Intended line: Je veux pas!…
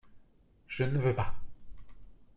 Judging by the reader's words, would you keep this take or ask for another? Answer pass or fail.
fail